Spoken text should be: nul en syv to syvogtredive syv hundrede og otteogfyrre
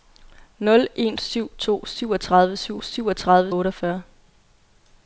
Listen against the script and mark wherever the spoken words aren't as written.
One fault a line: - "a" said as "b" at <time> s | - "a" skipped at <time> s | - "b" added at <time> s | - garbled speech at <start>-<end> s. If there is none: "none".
- "hundrede" said as "syvogtredive" at 2.8 s